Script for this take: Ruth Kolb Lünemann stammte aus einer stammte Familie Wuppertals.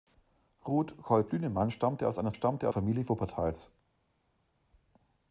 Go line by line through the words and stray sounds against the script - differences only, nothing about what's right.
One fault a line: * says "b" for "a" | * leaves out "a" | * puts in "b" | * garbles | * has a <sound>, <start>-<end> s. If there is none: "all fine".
all fine